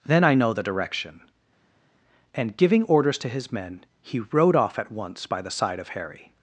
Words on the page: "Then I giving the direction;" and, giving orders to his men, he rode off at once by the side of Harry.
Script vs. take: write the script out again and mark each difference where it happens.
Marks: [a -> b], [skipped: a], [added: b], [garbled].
"Then I [giving -> know] the direction;" and, giving orders to his men, he rode off at once by the side of Harry.